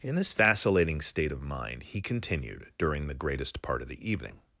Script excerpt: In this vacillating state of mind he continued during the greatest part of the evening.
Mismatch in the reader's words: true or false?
false